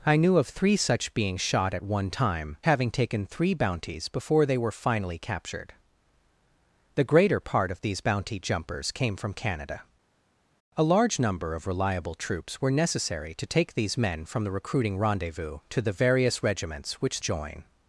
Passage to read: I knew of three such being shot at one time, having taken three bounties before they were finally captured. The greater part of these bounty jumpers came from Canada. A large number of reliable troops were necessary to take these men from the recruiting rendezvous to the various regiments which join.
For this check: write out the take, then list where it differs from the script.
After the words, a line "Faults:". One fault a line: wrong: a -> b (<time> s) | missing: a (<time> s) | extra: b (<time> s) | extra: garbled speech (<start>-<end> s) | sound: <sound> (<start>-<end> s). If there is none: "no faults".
I knew of three such being shot at one time, having taken three bounties before they were finally captured. The greater part of these bounty jumpers came from Canada. A large number of reliable troops were necessary to take these men from the recruiting rendezvous to the various regiments which join.
Faults:
no faults